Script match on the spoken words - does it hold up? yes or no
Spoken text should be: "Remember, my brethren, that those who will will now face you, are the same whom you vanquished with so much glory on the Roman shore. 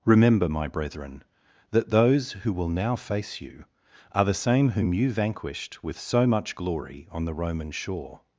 no